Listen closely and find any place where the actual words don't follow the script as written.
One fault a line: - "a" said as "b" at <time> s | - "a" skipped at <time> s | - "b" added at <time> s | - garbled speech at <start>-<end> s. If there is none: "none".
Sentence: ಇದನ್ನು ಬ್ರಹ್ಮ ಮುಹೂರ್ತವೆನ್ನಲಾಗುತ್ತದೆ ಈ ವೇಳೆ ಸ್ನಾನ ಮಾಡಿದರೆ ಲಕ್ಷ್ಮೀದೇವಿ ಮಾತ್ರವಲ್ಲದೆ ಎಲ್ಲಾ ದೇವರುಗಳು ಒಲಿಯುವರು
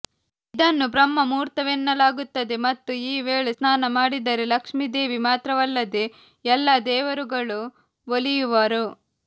- "ಮತ್ತು" added at 2.6 s